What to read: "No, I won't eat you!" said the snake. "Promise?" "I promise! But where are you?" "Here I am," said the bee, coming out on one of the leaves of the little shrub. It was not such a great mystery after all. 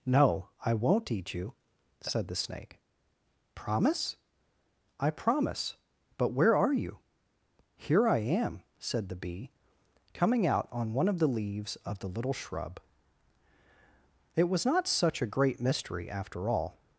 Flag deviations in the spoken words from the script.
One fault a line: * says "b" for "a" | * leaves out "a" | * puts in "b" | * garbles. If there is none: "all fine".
all fine